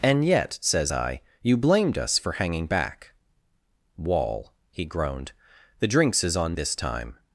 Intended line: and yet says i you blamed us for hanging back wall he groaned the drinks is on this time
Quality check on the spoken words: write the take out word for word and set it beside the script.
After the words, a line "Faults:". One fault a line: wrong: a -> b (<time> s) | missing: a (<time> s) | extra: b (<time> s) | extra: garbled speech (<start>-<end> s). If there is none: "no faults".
and yet says i you blamed us for hanging back wall he groaned the drinks is on this time
Faults:
no faults